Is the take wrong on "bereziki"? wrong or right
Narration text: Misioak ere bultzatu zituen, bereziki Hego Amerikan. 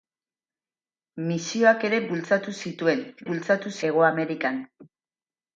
wrong